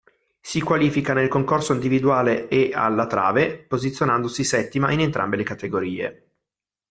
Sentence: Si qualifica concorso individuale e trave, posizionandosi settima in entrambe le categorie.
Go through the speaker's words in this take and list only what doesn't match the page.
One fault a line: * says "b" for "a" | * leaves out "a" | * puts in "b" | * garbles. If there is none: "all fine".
* puts in "nel"
* puts in "alla"